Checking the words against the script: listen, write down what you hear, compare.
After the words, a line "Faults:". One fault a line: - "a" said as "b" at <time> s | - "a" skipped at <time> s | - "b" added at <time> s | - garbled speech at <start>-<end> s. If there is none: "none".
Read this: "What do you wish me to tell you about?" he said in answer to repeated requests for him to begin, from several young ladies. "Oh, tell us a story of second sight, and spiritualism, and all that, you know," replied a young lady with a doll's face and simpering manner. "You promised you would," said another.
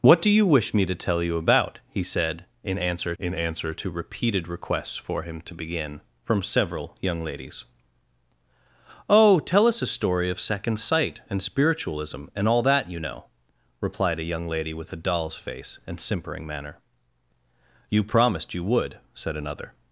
"What do you wish me to tell you about?" he said in answer in answer to repeated requests for him to begin, from several young ladies. "Oh, tell us a story of second sight, and spiritualism, and all that, you know," replied a young lady with a doll's face and simpering manner. "You promised you would," said another.
Faults:
- "in answer" added at 3.2 s